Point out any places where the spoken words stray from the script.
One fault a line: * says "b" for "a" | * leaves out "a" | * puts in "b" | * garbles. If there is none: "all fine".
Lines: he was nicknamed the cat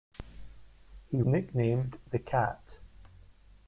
* leaves out "was"